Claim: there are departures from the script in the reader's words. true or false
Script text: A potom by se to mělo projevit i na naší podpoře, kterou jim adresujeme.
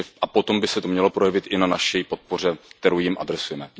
false